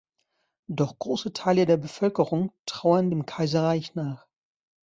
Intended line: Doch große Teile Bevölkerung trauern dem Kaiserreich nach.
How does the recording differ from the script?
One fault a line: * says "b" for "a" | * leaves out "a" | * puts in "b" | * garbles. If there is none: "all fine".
* puts in "der"